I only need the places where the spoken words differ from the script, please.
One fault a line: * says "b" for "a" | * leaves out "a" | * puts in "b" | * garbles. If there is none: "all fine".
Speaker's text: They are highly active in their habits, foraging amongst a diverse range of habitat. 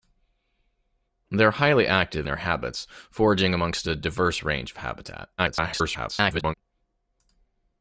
* leaves out "in"
* garbles